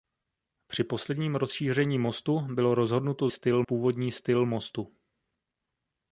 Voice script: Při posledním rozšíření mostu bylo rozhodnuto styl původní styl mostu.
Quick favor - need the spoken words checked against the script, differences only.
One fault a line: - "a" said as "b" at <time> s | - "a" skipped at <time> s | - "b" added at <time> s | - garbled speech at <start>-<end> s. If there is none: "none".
none